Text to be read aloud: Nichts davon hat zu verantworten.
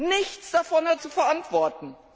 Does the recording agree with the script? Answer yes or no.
yes